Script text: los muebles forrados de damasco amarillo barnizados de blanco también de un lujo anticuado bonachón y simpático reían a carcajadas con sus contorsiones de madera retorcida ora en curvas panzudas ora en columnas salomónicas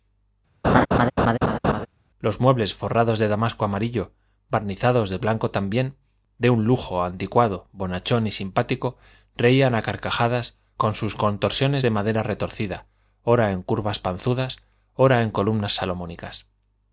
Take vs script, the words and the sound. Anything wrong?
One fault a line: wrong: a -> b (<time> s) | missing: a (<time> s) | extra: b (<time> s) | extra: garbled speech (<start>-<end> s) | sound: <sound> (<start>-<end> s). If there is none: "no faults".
sound: laugh (0.6-1.9 s)